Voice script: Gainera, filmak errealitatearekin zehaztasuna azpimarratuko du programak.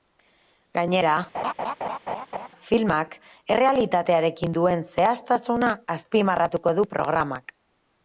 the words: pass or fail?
fail